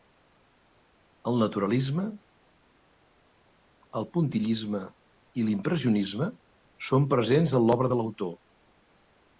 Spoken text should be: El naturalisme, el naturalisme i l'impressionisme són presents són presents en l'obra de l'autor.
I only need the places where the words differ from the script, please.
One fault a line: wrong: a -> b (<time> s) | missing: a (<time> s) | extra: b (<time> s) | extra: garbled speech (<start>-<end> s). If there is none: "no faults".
wrong: naturalisme -> puntillisme (4.2 s)
missing: són presents (7.5 s)